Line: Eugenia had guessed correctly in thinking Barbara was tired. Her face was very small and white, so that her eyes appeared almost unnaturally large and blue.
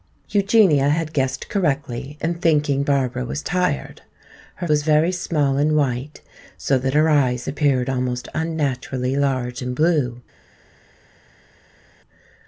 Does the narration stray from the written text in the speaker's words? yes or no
yes